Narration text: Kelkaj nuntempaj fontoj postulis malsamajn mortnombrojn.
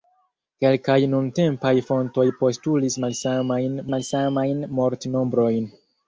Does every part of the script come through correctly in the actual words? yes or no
no